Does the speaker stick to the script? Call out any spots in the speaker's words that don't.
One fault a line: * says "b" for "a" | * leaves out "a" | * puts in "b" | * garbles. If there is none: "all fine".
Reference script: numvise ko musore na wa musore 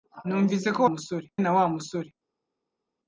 all fine